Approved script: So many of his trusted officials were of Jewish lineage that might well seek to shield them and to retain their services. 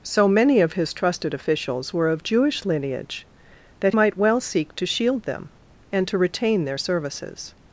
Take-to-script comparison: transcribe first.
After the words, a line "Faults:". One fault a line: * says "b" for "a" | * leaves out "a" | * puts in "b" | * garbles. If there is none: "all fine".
So many of his trusted officials were of Jewish lineage that might well seek to shield them and to retain their services.
Faults:
all fine